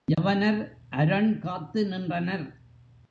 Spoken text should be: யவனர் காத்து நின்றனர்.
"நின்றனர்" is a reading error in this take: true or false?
false